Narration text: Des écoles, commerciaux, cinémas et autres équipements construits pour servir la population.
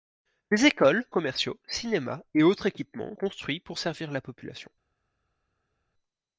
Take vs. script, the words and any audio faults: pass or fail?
pass